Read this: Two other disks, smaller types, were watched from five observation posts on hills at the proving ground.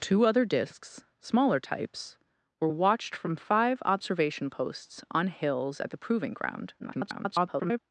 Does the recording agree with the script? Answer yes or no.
no